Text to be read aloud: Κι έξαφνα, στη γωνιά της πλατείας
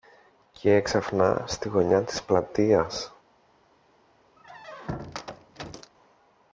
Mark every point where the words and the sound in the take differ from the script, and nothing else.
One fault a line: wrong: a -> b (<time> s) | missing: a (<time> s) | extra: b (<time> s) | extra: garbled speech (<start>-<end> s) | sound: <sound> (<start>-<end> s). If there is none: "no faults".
sound: squeak (4.4-5.9 s)